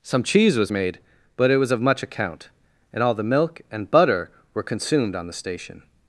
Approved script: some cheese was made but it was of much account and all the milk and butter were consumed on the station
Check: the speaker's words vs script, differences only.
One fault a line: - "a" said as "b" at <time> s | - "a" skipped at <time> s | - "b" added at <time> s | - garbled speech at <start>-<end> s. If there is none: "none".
none